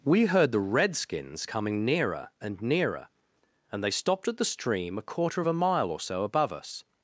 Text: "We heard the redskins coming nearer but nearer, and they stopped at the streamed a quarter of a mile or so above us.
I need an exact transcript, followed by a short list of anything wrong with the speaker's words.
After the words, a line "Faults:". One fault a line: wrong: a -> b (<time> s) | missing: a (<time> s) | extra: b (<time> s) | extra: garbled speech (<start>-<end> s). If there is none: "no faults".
"We heard the redskins coming nearer and nearer, and they stopped at the stream a quarter of a mile or so above us.
Faults:
wrong: but -> and (2.4 s)
wrong: streamed -> stream (4.5 s)